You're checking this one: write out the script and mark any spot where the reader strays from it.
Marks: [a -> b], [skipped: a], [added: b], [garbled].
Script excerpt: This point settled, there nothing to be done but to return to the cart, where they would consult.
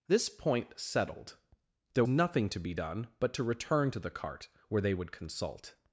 This point settled, there nothing to be done but to return to the cart, where they would consult.